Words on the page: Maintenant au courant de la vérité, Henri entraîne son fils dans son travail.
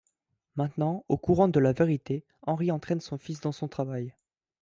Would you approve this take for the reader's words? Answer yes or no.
yes